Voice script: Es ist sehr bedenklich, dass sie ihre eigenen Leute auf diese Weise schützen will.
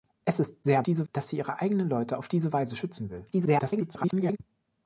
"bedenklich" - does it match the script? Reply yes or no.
no